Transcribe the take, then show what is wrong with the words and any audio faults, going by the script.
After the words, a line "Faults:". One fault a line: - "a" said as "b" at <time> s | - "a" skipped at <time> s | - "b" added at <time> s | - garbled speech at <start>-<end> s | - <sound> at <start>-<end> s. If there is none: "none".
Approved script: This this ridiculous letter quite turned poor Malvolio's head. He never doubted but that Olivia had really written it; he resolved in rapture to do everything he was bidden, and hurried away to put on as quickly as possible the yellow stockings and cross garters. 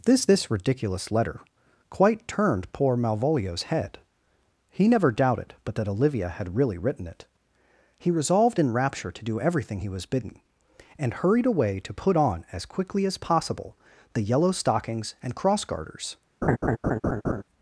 This this ridiculous letter quite turned poor Malvolio's head. He never doubted but that Olivia had really written it; he resolved in rapture to do everything he was bidden, and hurried away to put on as quickly as possible the yellow stockings and cross garters.
Faults:
- laugh at 16.4-17.4 s